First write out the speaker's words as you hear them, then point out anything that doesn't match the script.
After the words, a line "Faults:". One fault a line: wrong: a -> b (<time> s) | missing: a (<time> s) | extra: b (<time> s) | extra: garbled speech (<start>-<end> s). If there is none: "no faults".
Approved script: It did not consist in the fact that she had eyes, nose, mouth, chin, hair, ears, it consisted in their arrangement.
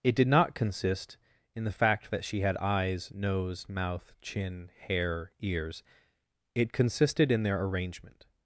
It did not consist in the fact that she had eyes, nose, mouth, chin, hair, ears, it consisted in their arrangement.
Faults:
no faults